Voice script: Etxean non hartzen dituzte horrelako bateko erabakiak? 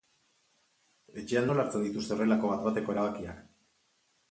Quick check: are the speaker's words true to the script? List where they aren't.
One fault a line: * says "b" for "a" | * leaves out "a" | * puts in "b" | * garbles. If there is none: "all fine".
* says "nola" for "non"
* puts in "bat"